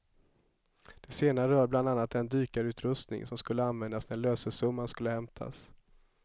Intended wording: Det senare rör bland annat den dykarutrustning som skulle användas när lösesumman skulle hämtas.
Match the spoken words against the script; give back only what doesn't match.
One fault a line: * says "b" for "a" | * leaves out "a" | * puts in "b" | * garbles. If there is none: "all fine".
all fine